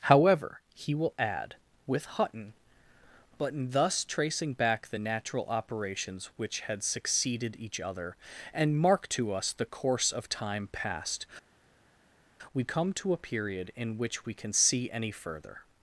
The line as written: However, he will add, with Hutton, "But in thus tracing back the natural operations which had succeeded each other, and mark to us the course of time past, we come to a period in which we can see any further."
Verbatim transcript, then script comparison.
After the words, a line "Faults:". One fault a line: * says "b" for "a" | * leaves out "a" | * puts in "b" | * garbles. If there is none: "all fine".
However, he will add, with Hutton, "But in thus tracing back the natural operations which had succeeded each other, and mark to us the course of time past, we come to a period in which we can see any further."
Faults:
all fine